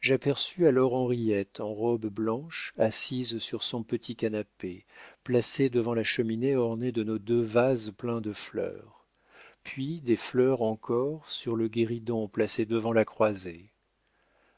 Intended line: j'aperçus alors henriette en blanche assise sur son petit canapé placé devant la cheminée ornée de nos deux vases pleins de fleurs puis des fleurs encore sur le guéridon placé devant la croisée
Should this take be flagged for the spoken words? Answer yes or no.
yes